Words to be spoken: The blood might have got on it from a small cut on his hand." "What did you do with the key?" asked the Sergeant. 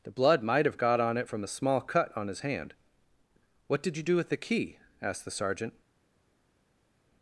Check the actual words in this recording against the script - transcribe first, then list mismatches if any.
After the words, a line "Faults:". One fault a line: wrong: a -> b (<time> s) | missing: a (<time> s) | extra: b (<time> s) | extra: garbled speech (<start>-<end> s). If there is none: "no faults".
The blood might have got on it from a small cut on his hand." "What did you do with the key?" asked the Sergeant.
Faults:
no faults